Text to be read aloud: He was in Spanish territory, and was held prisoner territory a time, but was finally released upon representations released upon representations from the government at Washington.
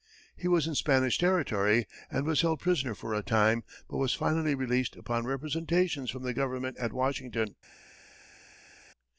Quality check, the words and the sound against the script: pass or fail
fail